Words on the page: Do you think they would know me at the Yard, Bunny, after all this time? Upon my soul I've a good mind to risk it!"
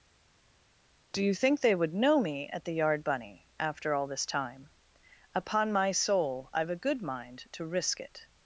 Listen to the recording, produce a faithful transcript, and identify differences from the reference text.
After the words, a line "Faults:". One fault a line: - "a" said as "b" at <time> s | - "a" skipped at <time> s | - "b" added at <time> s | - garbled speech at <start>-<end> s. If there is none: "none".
Do you think they would know me at the Yard, Bunny, after all this time? Upon my soul I've a good mind to risk it!"
Faults:
none